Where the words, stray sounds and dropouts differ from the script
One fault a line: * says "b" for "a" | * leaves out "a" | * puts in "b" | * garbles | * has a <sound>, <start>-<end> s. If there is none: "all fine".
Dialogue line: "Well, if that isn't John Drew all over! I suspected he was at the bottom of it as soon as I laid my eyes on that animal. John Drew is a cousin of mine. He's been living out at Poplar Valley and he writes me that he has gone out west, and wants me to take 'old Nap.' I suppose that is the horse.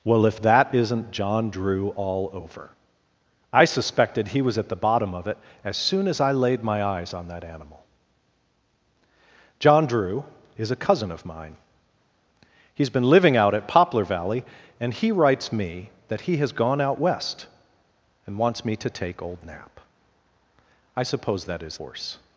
* leaves out "the"